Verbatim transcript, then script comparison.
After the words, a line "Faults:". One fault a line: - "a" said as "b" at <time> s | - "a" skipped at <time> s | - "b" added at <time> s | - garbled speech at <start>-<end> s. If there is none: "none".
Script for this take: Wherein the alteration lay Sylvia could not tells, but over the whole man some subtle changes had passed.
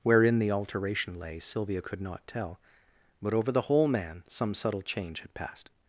Wherein the alteration lay Sylvia could not tell, but over the whole man some subtle change had passed.
Faults:
- "tells" said as "tell" at 2.3 s
- "changes" said as "change" at 4.8 s